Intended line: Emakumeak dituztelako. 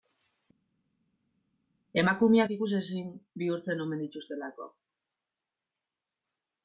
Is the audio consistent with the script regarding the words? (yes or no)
no